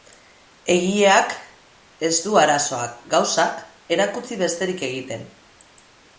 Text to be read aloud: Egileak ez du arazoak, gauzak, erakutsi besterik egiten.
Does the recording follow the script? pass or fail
pass